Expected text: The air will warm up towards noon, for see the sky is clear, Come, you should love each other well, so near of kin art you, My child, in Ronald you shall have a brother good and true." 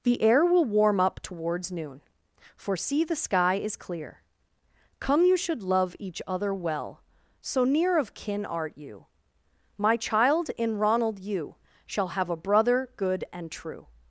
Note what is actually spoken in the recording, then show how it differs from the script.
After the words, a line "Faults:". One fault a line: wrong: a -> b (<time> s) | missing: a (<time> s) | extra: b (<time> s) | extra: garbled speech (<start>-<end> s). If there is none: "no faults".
The air will warm up towards noon, for see the sky is clear, Come, you should love each other well, so near of kin art you, My child, in Ronald you shall have a brother good and true."
Faults:
no faults